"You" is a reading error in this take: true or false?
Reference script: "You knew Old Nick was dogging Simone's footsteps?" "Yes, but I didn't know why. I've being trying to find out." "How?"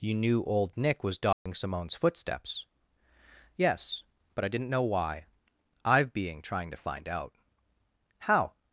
false